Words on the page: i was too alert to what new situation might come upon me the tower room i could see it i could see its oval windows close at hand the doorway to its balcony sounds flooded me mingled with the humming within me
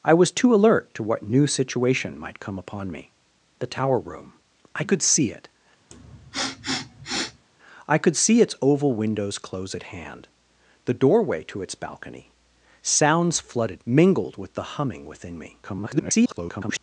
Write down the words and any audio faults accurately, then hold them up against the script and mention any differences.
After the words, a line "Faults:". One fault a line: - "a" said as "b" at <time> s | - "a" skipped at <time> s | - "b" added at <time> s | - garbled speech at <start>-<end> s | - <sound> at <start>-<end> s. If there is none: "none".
i was too alert to what new situation might come upon me the tower room i could see it i could see its oval windows close at hand the doorway to its balcony sounds flooded mingled with the humming within me [garbled]
Faults:
- sniff at 5.9-7.4 s
- "me" skipped at 13.8 s
- garbled speech at 15.6-16.8 s